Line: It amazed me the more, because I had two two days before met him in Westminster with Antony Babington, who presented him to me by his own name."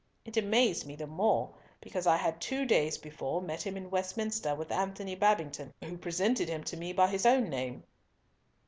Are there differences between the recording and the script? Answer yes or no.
yes